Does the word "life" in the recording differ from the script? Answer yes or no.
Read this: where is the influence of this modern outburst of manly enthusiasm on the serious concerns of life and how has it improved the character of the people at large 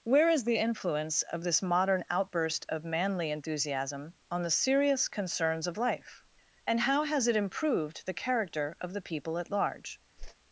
no